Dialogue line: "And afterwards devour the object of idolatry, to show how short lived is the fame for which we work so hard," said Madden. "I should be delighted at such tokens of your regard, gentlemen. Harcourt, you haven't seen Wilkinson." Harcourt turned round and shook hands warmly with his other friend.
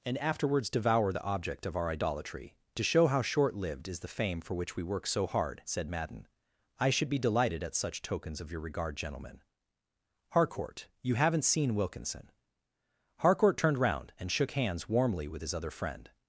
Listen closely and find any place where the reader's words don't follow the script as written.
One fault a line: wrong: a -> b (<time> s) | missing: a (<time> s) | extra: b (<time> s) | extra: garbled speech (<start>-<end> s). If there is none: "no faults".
extra: our (1.8 s)